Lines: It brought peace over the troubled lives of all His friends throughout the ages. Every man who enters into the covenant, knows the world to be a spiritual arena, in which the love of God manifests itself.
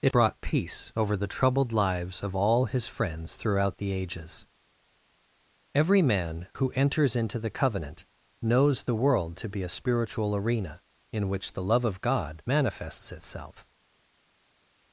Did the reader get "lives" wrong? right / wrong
right